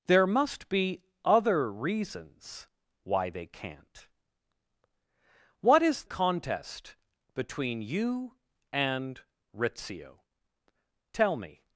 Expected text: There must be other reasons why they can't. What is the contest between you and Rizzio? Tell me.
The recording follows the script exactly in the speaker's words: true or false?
false